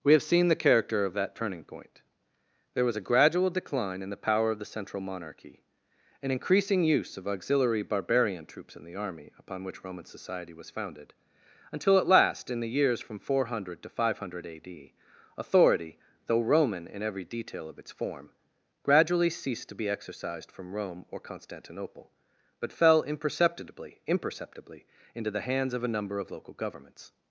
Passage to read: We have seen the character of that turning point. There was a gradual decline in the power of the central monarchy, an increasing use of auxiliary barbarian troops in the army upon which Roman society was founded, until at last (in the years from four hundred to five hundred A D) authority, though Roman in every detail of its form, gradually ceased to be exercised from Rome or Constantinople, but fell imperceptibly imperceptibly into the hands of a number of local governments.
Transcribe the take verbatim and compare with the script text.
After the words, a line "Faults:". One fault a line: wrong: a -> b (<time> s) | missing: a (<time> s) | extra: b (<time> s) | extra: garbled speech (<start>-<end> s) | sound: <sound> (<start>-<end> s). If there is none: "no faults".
We have seen the character of that turning point. There was a gradual decline in the power of the central monarchy, an increasing use of auxiliary barbarian troops in the army upon which Roman society was founded, until at last (in the years from four hundred to five hundred A D) authority, though Roman in every detail of its form, gradually ceased to be exercised from Rome or Constantinople, but fell imperceptibly imperceptibly into the hands of a number of local governments.
Faults:
no faults